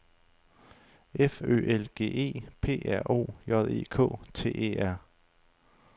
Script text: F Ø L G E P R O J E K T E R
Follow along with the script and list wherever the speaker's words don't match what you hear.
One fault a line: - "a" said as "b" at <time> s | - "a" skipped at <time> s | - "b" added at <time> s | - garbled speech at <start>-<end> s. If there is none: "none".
none